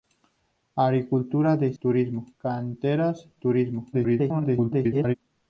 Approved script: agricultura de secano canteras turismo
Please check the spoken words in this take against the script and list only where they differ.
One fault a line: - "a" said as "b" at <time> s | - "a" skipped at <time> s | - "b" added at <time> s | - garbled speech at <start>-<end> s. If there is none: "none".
- "secano" said as "turismo" at 1.8 s
- garbled speech at 3.9-5.2 s